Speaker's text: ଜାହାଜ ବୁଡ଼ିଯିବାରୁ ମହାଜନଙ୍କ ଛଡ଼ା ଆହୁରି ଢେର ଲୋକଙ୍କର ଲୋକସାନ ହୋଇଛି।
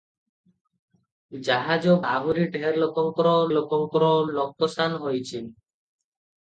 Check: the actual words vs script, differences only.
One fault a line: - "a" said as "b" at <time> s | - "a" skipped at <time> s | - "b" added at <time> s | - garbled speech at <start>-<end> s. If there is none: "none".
- "ବୁଡ଼ିଯିବାରୁ ମହାଜନଙ୍କ ଛଡ଼ା" skipped at 1.9 s
- "ଲୋକଙ୍କର" added at 3.6 s